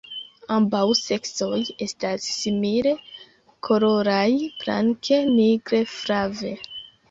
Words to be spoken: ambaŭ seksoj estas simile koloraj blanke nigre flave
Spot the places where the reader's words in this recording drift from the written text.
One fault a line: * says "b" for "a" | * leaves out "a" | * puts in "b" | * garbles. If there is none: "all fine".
all fine